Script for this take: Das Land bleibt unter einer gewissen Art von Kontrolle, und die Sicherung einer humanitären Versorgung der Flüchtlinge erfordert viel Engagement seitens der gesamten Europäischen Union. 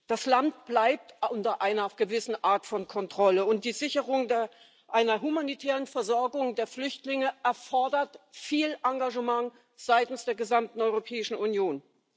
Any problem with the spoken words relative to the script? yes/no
no